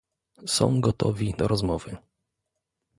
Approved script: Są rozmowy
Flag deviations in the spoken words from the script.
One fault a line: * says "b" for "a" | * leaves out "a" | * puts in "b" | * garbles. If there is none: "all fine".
* puts in "gotowi do"